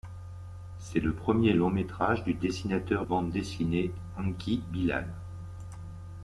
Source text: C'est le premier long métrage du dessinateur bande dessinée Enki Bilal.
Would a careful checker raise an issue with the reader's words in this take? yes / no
no